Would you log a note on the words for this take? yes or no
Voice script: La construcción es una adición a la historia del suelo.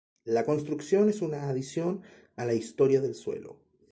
no